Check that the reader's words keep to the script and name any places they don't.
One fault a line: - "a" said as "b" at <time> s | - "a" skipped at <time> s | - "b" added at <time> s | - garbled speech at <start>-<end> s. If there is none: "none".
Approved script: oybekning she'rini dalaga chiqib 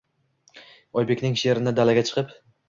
none